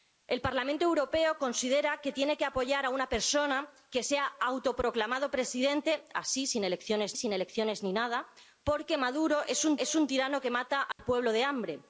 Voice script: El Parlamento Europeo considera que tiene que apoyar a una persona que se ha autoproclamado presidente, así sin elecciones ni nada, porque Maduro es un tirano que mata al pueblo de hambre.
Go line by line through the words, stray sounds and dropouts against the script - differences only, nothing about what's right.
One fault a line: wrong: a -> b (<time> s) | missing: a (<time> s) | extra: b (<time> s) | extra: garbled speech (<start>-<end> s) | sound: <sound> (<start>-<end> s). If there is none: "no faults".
extra: sin elecciones (7.2 s)
extra: es un (9.8 s)
sound: dropout (10.9-11.0 s)